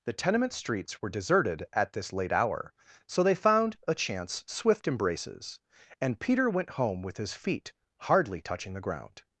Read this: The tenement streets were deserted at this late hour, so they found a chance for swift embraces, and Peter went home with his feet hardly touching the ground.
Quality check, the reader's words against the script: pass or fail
fail